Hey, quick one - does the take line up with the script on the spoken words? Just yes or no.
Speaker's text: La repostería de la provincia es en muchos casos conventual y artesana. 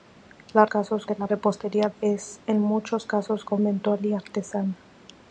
no